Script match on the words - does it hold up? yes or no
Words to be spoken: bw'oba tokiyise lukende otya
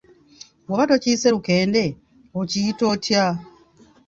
no